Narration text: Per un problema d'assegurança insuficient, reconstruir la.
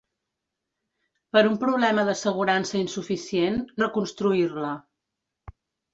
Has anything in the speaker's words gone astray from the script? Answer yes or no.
no